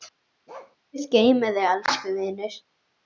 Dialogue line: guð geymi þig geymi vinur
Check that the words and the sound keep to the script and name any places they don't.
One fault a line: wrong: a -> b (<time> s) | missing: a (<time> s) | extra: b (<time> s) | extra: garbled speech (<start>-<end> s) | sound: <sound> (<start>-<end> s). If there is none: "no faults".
sound: bark (0.5-0.8 s)
wrong: geymi -> elsku (1.7 s)